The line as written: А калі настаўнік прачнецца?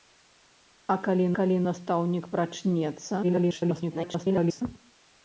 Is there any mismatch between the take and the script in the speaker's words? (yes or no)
yes